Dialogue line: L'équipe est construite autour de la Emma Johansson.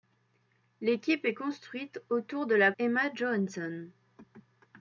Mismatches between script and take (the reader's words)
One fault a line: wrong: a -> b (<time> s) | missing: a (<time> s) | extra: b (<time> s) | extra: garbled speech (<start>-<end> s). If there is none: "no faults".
no faults